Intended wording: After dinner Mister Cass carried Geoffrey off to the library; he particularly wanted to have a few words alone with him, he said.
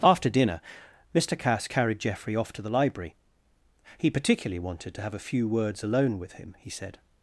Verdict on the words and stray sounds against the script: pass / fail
pass